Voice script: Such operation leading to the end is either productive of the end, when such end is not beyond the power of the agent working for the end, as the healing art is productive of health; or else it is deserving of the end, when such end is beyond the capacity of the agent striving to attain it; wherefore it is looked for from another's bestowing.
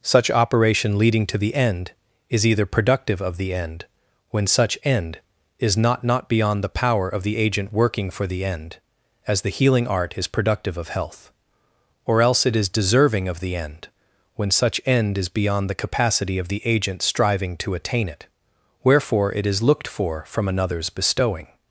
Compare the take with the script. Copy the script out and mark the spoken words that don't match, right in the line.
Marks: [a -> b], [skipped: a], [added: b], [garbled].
Such operation leading to the end is either productive of the end, when such end is not [added: not] beyond the power of the agent working for the end, as the healing art is productive of health; or else it is deserving of the end, when such end is beyond the capacity of the agent striving to attain it; wherefore it is looked for from another's bestowing.